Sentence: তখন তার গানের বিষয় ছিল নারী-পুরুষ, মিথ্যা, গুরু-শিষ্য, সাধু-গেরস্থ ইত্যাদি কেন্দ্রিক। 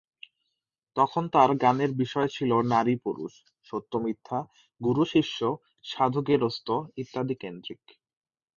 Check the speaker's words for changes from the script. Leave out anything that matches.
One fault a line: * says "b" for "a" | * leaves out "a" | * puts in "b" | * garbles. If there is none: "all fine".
* puts in "সত্য"